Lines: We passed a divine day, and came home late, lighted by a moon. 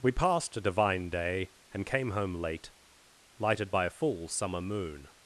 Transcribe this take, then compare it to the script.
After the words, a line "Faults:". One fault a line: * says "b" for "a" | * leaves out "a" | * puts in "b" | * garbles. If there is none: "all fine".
We passed a divine day, and came home late, lighted by a full summer moon.
Faults:
* puts in "full summer"